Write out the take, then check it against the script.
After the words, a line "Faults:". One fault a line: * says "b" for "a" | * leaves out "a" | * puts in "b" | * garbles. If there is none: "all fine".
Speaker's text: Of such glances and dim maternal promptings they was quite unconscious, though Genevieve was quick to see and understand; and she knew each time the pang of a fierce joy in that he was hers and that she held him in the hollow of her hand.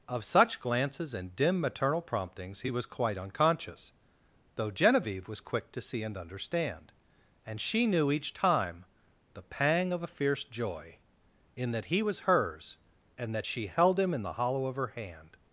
Of such glances and dim maternal promptings he was quite unconscious, though Genevieve was quick to see and understand; and she knew each time the pang of a fierce joy in that he was hers and that she held him in the hollow of her hand.
Faults:
* says "he" for "they"